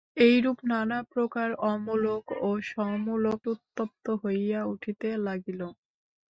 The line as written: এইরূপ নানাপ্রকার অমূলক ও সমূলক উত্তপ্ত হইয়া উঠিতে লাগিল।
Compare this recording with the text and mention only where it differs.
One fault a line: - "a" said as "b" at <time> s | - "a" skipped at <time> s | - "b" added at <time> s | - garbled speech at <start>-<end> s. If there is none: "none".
none